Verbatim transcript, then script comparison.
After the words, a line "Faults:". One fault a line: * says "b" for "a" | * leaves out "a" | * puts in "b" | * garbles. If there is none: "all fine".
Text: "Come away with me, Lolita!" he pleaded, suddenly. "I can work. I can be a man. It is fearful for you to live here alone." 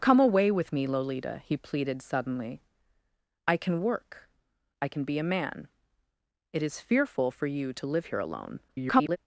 "Come away with me, Lolita!" he pleaded, suddenly. "I can work. I can be a man. It is fearful for you to live here alone." [garbled]
Faults:
* garbles